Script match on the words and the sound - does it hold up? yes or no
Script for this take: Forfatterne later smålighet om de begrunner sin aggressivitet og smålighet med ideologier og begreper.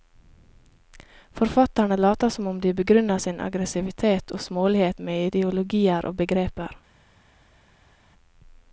no